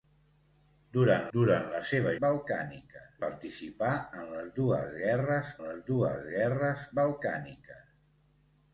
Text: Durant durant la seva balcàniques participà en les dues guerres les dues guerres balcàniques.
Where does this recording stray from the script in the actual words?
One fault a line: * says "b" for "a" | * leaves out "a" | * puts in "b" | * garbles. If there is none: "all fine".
all fine